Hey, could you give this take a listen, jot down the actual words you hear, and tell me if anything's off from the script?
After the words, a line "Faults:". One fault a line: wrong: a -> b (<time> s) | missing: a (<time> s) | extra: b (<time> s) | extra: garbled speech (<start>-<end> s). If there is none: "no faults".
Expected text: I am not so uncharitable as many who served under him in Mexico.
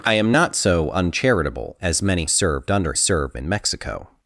I am not so uncharitable as many served under served in Mexico.
Faults:
missing: who (2.2 s)
wrong: him -> served (2.9 s)